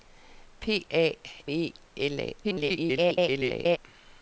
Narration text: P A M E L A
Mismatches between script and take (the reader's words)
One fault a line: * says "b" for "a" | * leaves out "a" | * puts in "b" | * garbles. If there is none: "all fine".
* leaves out "M"
* garbles